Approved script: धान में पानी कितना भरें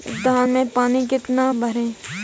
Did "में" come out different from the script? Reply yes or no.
no